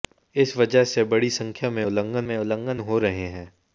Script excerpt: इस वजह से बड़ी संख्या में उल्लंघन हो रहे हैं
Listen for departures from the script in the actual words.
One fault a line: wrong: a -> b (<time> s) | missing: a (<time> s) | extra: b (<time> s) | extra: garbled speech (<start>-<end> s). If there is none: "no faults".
extra: में उल्लंघन (2.2 s)